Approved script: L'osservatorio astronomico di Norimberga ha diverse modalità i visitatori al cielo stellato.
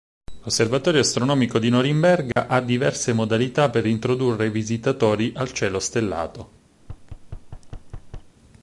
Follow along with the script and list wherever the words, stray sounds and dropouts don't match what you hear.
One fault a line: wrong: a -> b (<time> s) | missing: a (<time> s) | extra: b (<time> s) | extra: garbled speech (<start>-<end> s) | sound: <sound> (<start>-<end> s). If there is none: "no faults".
sound: dropout (2.3-2.4 s)
extra: per introdurre (3.7 s)
sound: thud (6.8-8.3 s)